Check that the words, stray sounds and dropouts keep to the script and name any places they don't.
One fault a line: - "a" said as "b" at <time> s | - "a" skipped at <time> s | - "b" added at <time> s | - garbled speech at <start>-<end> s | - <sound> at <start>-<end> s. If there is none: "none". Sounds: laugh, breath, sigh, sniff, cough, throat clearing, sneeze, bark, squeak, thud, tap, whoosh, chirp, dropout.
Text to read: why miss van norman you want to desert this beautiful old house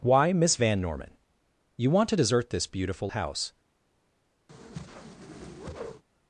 - "old" skipped at 3.1 s
- whoosh at 4.5-6.0 s